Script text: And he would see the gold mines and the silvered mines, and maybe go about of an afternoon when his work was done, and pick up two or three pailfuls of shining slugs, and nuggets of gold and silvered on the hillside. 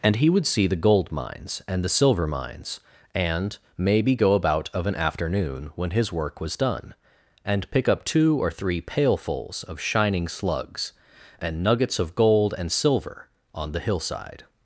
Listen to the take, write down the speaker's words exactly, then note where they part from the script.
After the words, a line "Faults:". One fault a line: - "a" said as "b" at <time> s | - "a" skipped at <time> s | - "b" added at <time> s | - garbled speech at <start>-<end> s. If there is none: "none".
And he would see the gold mines and the silver mines, and maybe go about of an afternoon when his work was done, and pick up two or three pailfuls of shining slugs, and nuggets of gold and silver on the hillside.
Faults:
- "silvered" said as "silver" at 1.9 s
- "silvered" said as "silver" at 12.7 s